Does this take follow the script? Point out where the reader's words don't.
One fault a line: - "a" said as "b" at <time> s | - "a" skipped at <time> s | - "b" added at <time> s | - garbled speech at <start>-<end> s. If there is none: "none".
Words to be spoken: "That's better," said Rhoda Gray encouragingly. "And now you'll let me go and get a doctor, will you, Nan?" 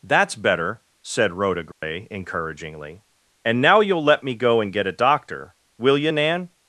none